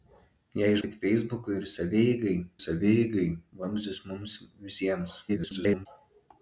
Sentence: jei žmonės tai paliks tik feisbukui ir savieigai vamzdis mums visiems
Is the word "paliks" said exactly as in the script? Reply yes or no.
no